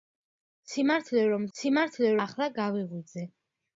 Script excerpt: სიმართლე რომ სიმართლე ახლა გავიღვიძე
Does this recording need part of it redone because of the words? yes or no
no